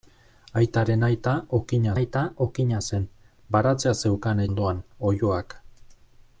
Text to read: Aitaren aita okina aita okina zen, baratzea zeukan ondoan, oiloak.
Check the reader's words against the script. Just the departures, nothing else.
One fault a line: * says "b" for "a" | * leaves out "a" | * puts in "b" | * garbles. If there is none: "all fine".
all fine